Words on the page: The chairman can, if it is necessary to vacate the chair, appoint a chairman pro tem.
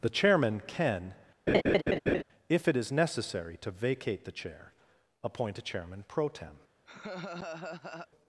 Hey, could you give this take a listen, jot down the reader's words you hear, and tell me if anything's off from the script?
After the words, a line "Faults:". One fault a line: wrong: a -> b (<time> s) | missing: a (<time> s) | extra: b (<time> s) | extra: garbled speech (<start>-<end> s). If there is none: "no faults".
The chairman can, if it is necessary to vacate the chair, appoint a chairman pro tem.
Faults:
no faults